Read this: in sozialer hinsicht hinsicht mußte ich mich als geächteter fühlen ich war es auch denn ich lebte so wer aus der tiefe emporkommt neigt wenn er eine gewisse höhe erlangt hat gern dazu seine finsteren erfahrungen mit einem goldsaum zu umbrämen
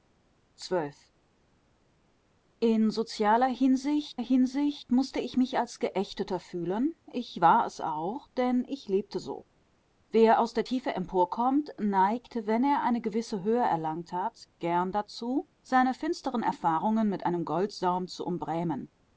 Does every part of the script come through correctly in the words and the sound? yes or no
yes